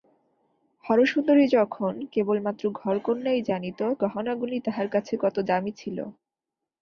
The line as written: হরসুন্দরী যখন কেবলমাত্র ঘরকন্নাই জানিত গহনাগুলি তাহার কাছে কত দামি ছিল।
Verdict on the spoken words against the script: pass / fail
pass